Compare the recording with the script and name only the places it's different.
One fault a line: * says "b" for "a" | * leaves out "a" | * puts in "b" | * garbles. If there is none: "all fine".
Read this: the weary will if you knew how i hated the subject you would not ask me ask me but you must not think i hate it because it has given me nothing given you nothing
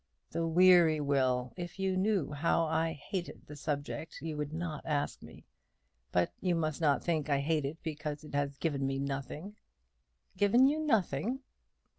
* leaves out "ask me"